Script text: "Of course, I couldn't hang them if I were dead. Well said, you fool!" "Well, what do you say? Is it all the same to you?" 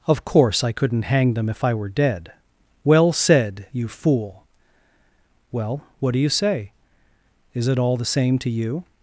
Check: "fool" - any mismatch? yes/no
no